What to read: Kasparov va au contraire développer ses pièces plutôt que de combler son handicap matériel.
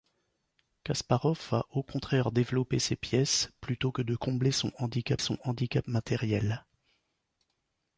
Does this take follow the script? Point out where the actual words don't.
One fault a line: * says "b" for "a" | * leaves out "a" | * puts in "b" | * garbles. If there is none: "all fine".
* puts in "son handicap"